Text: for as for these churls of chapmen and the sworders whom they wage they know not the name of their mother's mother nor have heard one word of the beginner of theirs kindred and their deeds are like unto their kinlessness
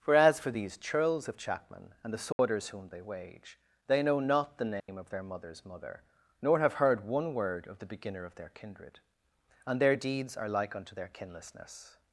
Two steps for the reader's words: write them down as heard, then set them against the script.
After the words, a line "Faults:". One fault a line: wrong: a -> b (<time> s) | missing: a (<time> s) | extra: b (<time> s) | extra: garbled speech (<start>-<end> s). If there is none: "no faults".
for as for these churls of chapmen and the sworders whom they wage they know not the name of their mother's mother nor have heard one word of the beginner of their kindred and their deeds are like unto their kinlessness
Faults:
wrong: theirs -> their (8.3 s)